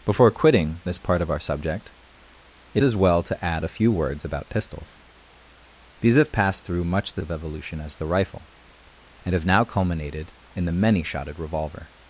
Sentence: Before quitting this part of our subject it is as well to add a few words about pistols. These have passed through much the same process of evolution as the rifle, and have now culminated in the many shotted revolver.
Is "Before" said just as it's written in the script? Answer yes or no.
yes